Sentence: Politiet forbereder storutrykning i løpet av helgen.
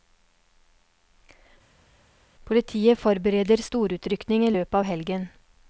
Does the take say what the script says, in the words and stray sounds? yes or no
yes